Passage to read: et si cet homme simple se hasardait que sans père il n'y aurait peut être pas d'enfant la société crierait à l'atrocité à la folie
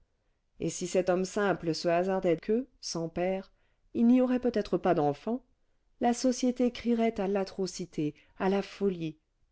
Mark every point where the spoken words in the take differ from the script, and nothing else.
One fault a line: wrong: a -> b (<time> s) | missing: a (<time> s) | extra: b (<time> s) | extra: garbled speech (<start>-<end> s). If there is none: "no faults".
no faults